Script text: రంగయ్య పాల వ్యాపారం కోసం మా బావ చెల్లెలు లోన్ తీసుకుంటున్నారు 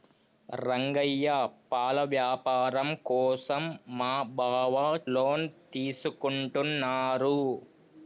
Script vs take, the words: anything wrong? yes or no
yes